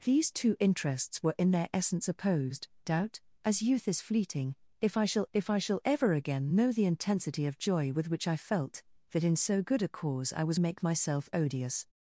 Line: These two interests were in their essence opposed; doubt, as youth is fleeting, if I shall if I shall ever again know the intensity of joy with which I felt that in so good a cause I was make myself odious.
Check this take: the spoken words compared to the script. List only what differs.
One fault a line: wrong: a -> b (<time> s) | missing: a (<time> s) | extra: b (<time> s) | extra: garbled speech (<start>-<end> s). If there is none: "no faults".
no faults